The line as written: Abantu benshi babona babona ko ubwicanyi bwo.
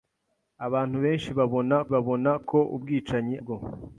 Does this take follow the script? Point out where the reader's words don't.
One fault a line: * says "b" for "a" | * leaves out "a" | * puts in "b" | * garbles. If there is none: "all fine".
all fine